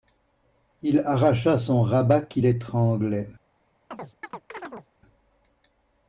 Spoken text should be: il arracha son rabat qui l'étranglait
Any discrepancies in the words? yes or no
no